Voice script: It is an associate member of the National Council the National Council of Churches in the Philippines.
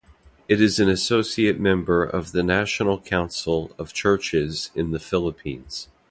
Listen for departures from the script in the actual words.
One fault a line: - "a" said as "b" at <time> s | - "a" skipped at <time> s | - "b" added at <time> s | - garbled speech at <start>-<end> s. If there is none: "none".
- "the National Council" skipped at 3.7 s